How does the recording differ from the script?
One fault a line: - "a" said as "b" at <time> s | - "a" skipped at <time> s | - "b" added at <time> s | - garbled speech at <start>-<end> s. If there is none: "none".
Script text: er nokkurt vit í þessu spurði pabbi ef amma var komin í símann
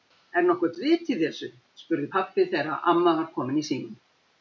- "ef" said as "þegar" at 2.5 s